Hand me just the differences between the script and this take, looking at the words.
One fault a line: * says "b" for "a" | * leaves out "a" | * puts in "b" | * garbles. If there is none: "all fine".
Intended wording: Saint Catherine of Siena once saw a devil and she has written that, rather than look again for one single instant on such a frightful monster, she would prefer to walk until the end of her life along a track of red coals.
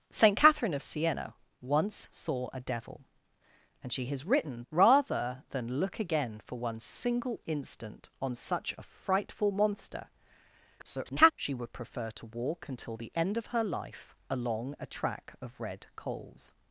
* leaves out "that"
* garbles